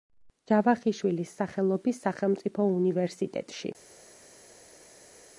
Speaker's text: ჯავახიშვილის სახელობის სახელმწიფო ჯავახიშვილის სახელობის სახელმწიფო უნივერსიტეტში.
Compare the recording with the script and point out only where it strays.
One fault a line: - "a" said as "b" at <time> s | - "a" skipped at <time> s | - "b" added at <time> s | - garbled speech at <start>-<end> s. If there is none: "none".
- "ჯავახიშვილის სახელობის სახელმწიფო" skipped at 2.7 s